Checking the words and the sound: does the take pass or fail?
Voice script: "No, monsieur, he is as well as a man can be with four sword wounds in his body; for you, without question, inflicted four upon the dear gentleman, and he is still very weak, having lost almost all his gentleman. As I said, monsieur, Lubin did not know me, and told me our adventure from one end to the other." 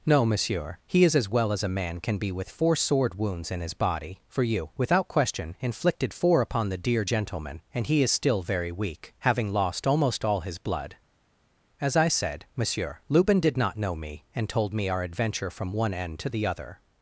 fail